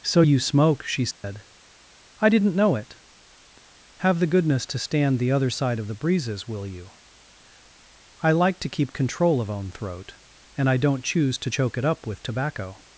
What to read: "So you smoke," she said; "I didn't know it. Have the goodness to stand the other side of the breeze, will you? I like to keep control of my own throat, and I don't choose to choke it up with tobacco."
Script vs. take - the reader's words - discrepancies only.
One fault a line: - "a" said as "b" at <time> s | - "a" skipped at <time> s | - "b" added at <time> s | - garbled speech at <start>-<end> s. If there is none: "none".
- "breeze" said as "breezes" at 5.9 s
- "my" skipped at 9.5 s